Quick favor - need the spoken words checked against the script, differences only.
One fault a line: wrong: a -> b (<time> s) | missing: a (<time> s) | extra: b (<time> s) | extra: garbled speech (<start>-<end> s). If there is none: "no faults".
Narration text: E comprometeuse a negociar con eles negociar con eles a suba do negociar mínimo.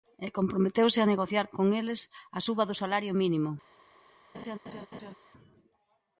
missing: negociar con eles (2.0 s)
wrong: negociar -> salario (2.8 s)